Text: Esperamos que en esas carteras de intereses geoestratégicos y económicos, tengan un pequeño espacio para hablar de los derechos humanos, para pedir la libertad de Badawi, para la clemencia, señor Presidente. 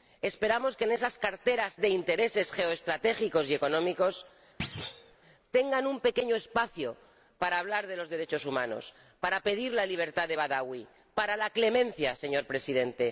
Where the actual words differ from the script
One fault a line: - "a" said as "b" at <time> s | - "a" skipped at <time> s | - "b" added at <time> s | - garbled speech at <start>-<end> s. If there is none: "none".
none